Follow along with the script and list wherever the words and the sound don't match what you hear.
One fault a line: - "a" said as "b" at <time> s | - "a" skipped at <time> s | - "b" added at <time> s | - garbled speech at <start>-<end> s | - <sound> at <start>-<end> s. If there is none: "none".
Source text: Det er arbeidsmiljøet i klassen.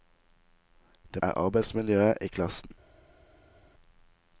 none